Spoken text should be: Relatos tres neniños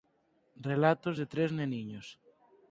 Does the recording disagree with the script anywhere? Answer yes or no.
yes